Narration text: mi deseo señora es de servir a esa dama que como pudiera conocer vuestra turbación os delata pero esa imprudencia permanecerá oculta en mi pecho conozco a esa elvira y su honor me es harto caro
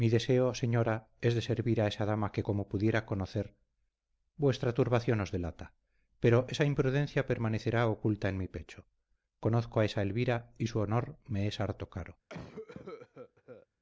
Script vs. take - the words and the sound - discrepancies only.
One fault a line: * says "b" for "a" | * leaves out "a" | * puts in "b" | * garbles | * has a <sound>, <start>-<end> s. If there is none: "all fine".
* has a cough, 12.3-13.7 s